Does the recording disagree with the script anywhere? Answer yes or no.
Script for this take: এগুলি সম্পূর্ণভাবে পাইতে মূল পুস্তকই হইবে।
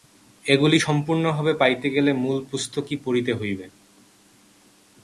yes